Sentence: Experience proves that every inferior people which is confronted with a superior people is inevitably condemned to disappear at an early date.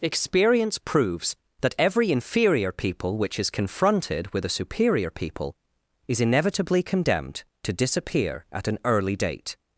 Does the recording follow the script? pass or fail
pass